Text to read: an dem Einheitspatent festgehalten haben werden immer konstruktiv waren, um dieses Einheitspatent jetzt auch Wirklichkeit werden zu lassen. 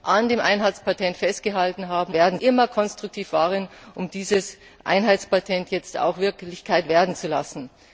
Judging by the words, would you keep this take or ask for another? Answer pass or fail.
pass